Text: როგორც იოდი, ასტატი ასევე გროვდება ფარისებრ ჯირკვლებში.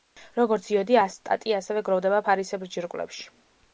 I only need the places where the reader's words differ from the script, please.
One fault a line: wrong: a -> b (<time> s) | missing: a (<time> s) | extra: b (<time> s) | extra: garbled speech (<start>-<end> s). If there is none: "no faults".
no faults